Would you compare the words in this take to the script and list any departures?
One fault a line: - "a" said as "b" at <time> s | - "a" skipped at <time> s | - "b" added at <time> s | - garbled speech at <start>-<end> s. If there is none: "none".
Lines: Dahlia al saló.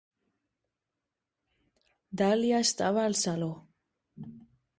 - "estava" added at 2.6 s